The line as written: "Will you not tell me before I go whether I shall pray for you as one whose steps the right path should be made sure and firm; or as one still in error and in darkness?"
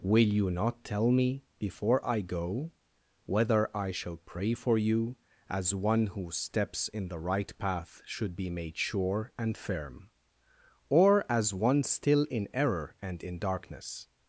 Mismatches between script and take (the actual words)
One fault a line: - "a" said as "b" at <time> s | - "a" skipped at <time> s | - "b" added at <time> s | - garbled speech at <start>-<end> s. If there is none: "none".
- "in" added at 6.9 s